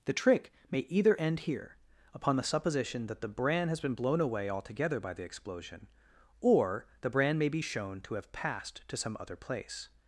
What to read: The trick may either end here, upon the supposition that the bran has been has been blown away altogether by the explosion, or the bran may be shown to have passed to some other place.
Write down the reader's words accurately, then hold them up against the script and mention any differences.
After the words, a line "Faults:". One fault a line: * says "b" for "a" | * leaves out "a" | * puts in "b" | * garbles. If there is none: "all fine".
The trick may either end here, upon the supposition that the bran has been blown away altogether by the explosion, or the bran may be shown to have passed to some other place.
Faults:
* leaves out "has been"